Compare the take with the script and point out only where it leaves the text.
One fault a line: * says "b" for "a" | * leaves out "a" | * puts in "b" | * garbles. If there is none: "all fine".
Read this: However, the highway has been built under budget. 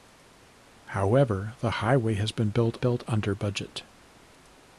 * puts in "built"